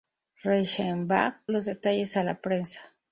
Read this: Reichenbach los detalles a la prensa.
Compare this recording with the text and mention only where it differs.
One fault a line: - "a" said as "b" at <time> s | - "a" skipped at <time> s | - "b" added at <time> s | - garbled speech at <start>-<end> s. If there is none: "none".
none